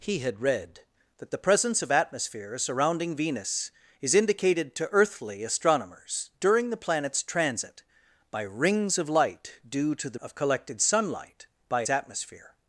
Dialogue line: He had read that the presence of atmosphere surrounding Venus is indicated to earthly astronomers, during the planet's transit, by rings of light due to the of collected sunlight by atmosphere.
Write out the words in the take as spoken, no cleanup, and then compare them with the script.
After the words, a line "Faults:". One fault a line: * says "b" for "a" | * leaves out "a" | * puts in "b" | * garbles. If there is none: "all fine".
He had read that the presence of atmosphere surrounding Venus is indicated to earthly astronomers, during the planet's transit, by rings of light due to the of collected sunlight by atmosphere.
Faults:
all fine